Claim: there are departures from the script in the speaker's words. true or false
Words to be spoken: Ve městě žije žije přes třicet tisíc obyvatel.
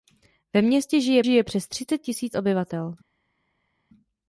false